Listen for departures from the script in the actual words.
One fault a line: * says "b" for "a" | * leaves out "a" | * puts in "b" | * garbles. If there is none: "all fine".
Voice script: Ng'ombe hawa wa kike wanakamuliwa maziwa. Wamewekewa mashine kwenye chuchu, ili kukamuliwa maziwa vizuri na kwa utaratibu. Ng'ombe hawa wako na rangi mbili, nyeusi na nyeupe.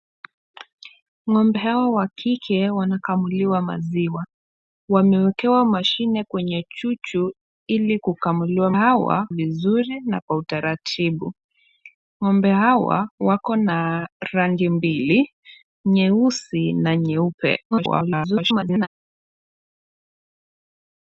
* says "hawa" for "maziwa"
* garbles